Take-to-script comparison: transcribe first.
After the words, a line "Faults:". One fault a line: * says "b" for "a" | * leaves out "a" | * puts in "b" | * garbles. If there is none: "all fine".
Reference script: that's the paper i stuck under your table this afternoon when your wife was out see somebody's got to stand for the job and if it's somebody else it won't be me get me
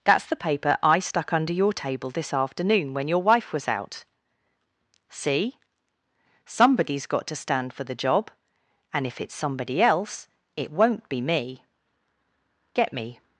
that's the paper i stuck under your table this afternoon when your wife was out see somebody's got to stand for the job and if it's somebody else it won't be me get me
Faults:
all fine